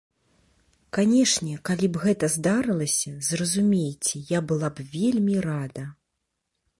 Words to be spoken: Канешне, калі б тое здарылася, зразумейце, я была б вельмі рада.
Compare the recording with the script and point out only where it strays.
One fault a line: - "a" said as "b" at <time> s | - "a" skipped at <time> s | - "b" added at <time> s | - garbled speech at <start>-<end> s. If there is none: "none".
- "тое" said as "гэта" at 2.0 s